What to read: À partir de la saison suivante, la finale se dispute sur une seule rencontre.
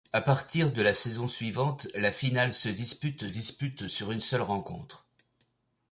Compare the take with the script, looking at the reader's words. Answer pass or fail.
fail